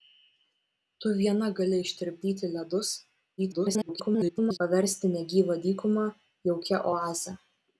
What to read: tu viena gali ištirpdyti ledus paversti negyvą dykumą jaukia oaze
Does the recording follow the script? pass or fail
fail